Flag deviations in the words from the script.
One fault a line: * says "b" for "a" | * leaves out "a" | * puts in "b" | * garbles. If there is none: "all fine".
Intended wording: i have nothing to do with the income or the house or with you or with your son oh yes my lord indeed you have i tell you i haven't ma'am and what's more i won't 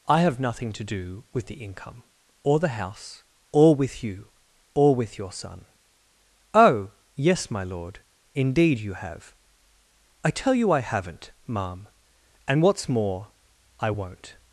all fine